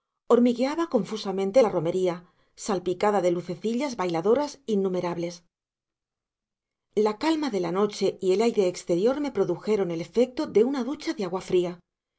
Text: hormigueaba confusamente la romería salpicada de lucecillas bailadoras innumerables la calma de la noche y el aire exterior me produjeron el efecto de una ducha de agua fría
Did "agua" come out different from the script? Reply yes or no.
no